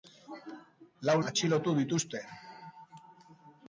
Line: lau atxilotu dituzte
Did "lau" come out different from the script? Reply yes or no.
no